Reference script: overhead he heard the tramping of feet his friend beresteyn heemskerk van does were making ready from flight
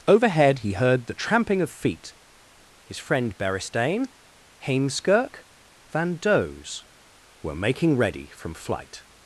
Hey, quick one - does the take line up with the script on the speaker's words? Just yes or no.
yes